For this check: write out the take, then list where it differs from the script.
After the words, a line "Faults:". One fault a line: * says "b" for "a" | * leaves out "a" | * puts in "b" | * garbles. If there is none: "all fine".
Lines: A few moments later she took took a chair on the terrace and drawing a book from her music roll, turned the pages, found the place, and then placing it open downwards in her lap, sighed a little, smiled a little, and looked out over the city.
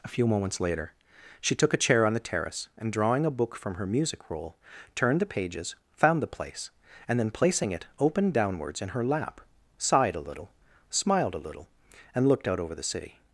A few moments later she took a chair on the terrace and drawing a book from her music roll, turned the pages, found the place, and then placing it open downwards in her lap, sighed a little, smiled a little, and looked out over the city.
Faults:
* leaves out "took"